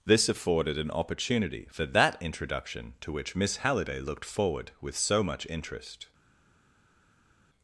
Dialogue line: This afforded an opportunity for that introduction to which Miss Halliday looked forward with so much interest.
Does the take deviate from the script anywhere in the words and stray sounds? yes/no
no